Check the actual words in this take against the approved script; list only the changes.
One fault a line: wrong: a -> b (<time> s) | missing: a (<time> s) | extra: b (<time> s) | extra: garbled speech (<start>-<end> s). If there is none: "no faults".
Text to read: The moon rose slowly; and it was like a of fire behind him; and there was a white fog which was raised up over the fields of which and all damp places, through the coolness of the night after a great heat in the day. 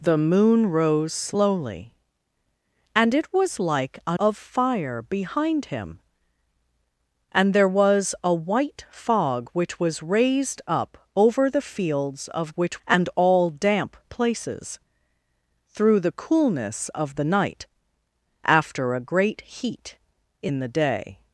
no faults